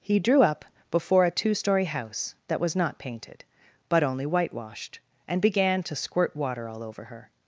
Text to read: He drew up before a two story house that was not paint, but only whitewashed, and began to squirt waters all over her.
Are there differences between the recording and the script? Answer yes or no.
yes